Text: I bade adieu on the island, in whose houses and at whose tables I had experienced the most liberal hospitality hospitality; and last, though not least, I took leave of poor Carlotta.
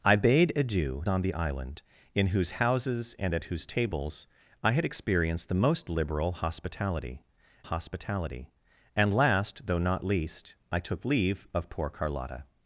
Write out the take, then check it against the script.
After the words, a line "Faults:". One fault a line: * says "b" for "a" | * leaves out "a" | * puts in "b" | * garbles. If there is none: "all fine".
I bade adieu on the island, in whose houses and at whose tables I had experienced the most liberal hospitality hospitality; and last, though not least, I took leave of poor Carlotta.
Faults:
all fine